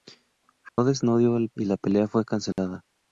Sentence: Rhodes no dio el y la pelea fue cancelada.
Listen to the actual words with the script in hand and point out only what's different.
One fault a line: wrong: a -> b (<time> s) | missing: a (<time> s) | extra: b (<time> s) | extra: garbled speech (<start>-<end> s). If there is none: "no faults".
no faults